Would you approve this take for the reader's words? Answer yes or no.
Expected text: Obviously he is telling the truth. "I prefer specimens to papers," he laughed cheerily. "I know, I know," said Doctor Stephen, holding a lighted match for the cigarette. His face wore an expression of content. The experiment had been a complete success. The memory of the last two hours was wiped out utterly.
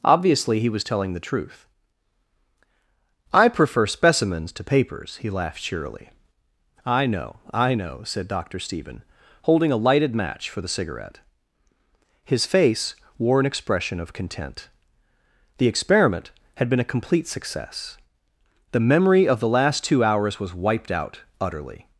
no